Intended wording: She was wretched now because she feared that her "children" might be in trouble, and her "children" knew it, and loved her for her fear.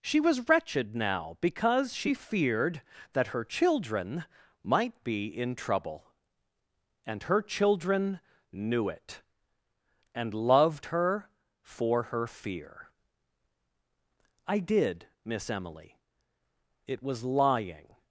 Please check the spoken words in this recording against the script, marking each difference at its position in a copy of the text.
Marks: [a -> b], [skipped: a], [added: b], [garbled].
She was wretched now because she feared that her "children" might be in trouble, and her "children" knew it, and loved her for her fear. [added: I did Miss Emily It was lying]